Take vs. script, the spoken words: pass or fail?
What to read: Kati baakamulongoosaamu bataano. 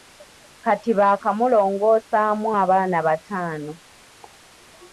fail